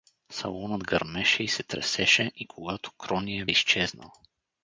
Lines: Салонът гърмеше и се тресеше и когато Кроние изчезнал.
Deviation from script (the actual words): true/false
false